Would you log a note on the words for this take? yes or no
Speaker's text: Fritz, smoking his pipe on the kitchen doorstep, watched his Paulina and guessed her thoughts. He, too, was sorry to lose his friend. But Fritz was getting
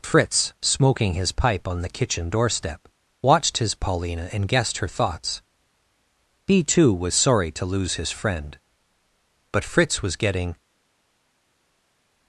no